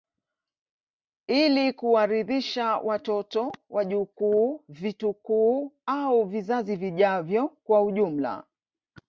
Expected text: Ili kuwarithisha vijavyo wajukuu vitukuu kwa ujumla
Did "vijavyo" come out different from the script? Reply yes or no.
yes